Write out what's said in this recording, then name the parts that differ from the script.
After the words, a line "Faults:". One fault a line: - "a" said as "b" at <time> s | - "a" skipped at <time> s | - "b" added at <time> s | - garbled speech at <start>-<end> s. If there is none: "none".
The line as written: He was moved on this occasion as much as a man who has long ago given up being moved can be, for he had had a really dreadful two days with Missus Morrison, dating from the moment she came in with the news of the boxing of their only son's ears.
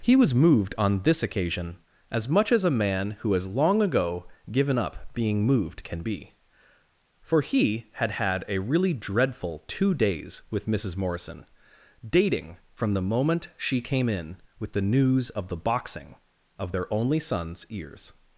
He was moved on this occasion as much as a man who has long ago given up being moved can be, for he had had a really dreadful two days with Missus Morrison, dating from the moment she came in with the news of the boxing of their only son's ears.
Faults:
none